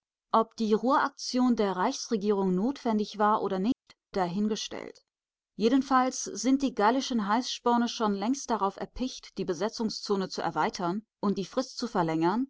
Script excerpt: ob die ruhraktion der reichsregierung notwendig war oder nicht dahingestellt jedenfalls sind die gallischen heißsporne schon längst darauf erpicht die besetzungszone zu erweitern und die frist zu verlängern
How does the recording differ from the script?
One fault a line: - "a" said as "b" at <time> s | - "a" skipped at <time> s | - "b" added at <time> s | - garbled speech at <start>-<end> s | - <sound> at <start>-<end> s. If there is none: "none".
- dropout at 3.7-3.9 s